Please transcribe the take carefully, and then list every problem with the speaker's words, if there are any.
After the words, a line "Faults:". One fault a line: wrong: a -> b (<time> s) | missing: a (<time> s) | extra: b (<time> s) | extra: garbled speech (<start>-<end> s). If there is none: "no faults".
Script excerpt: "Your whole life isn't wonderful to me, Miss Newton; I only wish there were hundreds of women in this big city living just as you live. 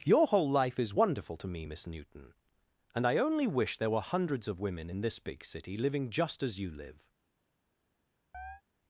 "Your whole life is wonderful to me, Miss Newton; and I only wish there were hundreds of women in this big city living just as you live.
Faults:
wrong: isn't -> is (0.8 s)
extra: and (2.9 s)